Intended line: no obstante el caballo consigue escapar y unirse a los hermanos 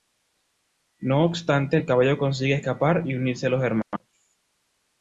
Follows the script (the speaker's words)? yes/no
yes